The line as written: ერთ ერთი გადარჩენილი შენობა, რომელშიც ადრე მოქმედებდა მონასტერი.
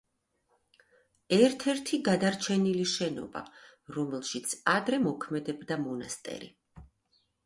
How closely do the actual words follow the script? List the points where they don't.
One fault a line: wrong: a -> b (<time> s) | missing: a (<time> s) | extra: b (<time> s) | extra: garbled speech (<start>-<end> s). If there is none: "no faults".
no faults